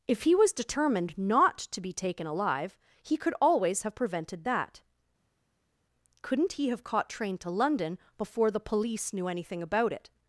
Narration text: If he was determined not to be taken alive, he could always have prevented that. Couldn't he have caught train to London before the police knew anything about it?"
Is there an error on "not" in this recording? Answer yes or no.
no